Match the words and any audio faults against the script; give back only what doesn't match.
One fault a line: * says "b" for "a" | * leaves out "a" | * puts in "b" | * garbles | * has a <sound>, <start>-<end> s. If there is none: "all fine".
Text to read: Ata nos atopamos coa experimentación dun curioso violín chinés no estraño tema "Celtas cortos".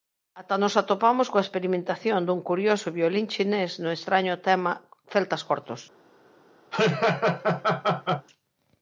* has a laugh, 6.7-8.3 s